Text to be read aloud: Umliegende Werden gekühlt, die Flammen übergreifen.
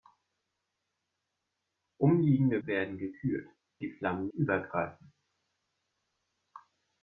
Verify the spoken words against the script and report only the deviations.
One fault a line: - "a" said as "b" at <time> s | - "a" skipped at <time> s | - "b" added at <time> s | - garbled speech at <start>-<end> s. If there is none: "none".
none